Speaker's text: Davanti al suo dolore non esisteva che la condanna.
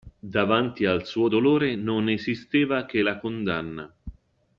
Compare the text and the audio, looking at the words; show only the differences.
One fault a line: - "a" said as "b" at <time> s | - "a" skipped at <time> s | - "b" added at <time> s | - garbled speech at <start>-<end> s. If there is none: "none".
none